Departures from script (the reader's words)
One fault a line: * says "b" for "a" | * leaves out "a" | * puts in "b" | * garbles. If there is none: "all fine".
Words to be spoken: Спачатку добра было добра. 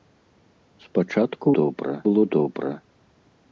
all fine